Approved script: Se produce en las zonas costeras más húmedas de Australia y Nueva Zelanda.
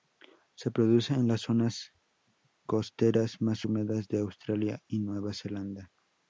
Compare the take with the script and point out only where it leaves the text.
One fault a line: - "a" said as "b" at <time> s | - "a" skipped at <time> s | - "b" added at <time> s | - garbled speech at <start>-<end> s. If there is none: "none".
none